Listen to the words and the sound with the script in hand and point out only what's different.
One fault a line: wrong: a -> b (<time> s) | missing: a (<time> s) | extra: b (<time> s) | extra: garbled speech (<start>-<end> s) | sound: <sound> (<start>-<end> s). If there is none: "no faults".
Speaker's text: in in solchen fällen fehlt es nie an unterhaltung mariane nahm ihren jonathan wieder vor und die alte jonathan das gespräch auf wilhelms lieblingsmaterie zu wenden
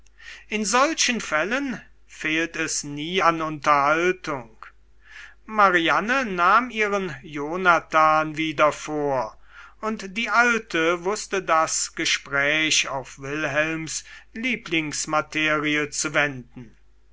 missing: in (0.7 s)
wrong: jonathan -> wußte (11.1 s)